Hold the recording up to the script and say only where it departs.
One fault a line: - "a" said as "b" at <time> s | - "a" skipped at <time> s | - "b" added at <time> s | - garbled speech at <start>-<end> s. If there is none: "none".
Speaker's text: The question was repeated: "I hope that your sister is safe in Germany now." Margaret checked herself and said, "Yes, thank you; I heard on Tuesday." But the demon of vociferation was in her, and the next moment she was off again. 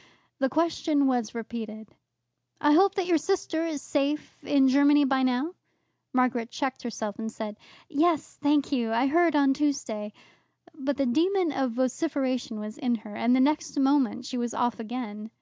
- "by" added at 5.0 s